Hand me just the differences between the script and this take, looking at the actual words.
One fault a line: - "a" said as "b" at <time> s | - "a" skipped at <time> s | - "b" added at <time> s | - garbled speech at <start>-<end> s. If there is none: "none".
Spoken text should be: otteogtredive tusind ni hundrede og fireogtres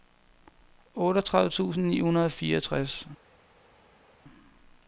none